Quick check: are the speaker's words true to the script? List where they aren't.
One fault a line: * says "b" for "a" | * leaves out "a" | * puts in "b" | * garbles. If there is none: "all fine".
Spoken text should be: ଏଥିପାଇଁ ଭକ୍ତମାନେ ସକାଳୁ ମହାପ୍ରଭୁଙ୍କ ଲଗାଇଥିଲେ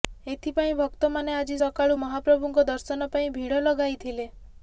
* puts in "ଆଜି"
* puts in "ଦର୍ଶନ ପାଇଁ ଭିଡ଼"